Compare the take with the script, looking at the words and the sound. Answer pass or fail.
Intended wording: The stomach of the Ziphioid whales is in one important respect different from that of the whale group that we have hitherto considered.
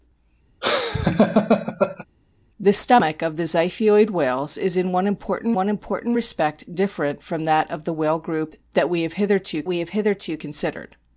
fail